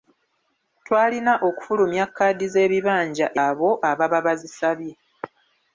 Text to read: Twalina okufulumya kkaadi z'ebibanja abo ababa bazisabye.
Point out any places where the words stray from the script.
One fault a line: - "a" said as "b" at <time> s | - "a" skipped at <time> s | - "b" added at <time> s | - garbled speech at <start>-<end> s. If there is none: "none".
none